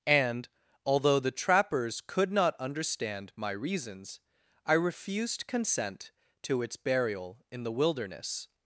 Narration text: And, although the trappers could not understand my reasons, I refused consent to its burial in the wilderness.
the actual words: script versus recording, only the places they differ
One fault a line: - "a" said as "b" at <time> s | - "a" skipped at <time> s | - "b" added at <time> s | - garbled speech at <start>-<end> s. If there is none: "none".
none